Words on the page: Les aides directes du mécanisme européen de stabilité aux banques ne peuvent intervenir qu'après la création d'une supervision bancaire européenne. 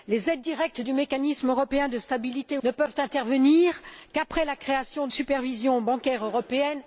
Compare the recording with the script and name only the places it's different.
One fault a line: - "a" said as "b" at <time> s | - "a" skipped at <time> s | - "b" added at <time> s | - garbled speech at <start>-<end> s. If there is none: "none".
- "aux banques" skipped at 2.6 s
- "d'une" skipped at 5.1 s